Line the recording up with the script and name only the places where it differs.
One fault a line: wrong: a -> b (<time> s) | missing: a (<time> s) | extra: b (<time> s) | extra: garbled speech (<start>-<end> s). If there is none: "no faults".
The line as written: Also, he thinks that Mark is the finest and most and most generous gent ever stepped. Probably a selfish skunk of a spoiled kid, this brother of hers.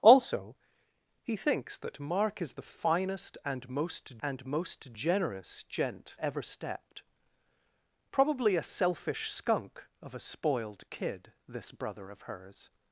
no faults